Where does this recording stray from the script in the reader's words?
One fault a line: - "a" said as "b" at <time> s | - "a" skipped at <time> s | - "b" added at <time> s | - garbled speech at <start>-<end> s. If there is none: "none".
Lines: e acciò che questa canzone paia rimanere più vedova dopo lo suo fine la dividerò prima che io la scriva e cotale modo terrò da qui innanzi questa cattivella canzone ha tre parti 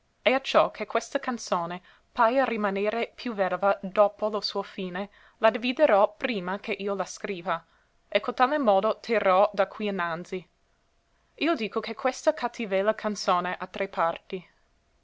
- "io dico che" added at 11.3 s